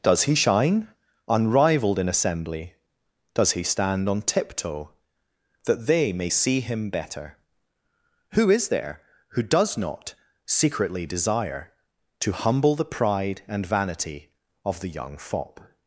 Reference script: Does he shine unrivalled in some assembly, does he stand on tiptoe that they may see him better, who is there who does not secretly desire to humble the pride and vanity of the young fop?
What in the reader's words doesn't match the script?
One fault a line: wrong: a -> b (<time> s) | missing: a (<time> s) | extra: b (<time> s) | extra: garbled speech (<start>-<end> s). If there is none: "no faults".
missing: some (2.1 s)